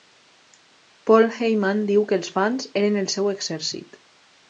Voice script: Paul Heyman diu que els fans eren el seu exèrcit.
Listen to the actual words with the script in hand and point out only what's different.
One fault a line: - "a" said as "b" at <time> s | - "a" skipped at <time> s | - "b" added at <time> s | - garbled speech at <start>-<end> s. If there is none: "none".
none